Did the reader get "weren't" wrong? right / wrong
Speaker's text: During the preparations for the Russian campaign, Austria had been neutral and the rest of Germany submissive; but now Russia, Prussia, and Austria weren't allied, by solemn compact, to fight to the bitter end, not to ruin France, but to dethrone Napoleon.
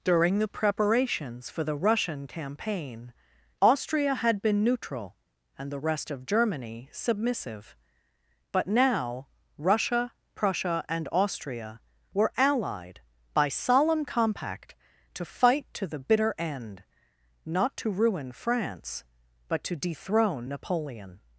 wrong